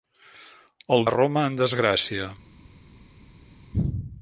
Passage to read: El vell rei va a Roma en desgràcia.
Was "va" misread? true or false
true